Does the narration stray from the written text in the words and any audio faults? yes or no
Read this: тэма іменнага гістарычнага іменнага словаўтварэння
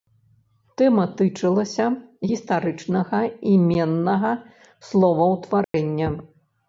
yes